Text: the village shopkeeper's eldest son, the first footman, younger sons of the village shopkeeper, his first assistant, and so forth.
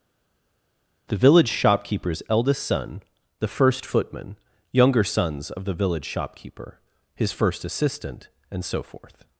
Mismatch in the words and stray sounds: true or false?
false